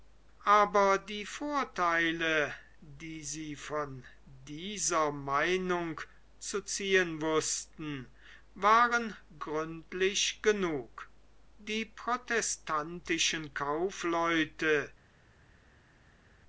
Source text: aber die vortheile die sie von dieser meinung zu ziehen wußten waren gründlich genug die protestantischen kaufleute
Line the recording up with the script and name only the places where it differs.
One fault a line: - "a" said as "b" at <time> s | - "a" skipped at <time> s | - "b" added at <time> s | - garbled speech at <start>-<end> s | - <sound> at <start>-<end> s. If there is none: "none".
none